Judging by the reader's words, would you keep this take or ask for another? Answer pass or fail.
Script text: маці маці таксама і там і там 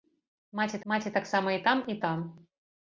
pass